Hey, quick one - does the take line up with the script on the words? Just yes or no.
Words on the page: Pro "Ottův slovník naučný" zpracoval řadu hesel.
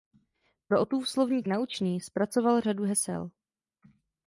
yes